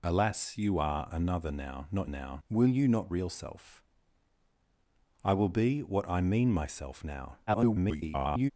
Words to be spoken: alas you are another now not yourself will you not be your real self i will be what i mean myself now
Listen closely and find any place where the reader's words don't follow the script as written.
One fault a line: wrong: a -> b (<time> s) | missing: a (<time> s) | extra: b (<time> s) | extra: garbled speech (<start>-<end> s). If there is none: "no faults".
wrong: yourself -> now (2.1 s)
missing: be your (3.1 s)
extra: garbled speech (7.5-8.5 s)